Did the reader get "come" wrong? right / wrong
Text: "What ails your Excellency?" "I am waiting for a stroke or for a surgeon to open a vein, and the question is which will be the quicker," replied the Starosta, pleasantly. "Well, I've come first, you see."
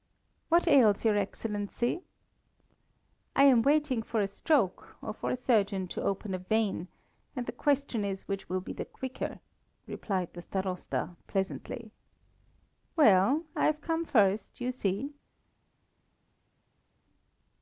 right